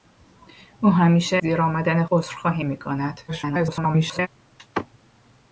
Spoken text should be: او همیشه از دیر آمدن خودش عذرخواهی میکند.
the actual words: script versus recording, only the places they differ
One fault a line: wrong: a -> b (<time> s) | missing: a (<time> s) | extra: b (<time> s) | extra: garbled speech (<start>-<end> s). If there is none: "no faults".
missing: از (1.4 s)
missing: خودش (2.0 s)
extra: garbled speech (3.3-4.3 s)